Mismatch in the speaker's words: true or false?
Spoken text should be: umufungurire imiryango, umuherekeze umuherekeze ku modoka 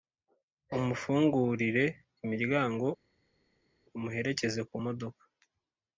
true